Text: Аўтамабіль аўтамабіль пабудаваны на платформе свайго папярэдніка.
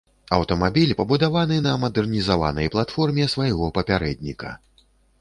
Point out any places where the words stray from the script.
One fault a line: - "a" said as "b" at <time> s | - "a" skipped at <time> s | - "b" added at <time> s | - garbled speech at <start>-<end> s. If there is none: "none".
- "аўтамабіль" skipped at 0.9 s
- "мадэрнізаванай" added at 1.8 s